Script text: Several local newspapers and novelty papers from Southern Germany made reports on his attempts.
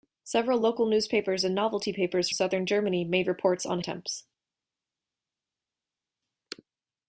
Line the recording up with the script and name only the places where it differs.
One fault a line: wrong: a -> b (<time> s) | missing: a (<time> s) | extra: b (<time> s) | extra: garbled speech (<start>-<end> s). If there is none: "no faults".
missing: from (2.3 s)
missing: his (3.8 s)